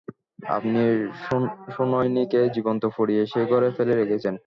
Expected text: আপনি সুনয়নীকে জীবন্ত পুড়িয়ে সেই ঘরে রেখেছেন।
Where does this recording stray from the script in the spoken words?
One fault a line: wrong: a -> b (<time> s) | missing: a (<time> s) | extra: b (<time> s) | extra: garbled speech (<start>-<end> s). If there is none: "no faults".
extra: ফেলে (3.8 s)